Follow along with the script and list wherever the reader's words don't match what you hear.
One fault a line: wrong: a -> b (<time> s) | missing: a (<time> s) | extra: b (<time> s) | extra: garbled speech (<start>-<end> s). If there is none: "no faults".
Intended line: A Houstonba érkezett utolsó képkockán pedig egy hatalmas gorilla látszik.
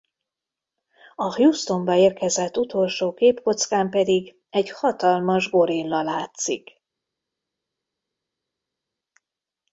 no faults